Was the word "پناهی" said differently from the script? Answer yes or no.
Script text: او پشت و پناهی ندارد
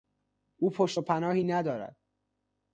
no